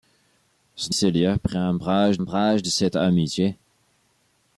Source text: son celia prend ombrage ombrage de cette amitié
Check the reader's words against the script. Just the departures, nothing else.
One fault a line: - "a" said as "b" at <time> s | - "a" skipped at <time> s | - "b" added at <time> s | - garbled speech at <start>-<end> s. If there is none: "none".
none